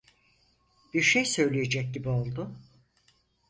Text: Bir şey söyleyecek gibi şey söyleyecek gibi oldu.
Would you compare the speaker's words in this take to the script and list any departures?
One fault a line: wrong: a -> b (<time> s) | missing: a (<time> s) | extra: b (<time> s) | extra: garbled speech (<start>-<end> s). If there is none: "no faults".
missing: şey söyleyecek gibi (2.1 s)